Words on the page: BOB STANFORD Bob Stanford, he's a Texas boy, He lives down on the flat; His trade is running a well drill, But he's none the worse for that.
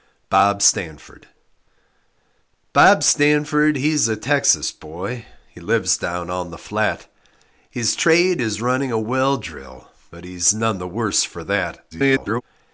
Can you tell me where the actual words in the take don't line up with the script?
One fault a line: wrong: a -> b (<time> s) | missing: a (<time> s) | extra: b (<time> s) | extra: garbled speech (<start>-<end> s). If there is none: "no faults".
extra: garbled speech (11.9-12.4 s)